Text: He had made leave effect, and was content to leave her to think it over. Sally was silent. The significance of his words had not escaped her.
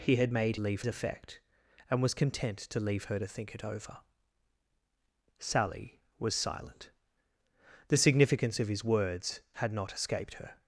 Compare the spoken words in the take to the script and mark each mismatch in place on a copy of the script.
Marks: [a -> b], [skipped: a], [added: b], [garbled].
He had made leave effect, and was content to leave her to think it over. Sally was silent. The significance of his words had not escaped her.